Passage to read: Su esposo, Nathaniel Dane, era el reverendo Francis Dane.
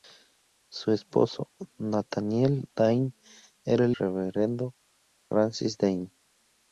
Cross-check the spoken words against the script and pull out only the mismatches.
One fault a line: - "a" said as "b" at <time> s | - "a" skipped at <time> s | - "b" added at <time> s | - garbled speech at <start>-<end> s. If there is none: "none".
none